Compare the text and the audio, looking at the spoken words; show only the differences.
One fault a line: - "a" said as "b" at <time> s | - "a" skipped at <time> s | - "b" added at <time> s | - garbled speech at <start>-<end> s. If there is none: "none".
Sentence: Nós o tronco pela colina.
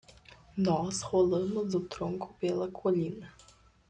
- "rolamos" added at 1.0 s